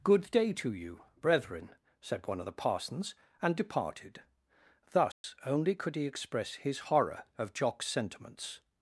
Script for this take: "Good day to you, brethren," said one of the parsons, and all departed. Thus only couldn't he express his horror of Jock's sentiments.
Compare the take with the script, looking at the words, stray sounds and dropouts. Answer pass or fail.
fail